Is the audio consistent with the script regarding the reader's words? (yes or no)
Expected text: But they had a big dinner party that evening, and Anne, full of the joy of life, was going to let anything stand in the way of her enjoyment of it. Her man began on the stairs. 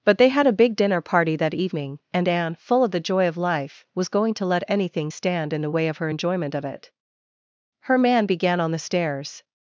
yes